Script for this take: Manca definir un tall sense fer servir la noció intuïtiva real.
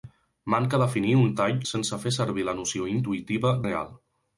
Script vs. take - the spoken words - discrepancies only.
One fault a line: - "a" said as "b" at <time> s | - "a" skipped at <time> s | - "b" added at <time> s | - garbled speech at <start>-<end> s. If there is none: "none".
none